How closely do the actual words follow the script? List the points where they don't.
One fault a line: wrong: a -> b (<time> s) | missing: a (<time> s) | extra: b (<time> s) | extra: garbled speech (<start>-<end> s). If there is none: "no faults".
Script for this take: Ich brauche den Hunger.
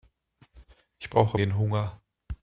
no faults